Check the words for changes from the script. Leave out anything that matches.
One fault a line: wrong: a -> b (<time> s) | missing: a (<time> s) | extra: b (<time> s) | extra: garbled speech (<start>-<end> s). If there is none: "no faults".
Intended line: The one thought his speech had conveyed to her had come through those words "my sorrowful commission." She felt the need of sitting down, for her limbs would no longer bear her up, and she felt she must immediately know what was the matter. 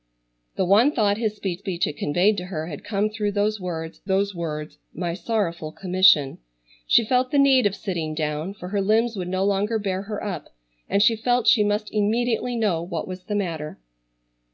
extra: speech (1.6 s)
extra: those words (4.1 s)